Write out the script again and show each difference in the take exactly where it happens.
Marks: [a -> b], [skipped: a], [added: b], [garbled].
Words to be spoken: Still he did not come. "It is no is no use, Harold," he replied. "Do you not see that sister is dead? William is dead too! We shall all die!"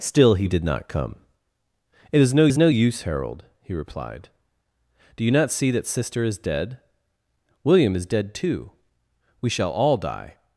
Still he did not come. "It is no is no use, Harold," he replied. "Do you not see that sister is dead? William is dead too! We shall all die!"